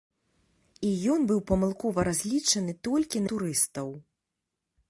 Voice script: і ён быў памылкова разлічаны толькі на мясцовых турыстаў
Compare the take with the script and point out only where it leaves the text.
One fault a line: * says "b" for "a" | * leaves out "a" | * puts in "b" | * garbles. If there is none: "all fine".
* leaves out "на мясцовых"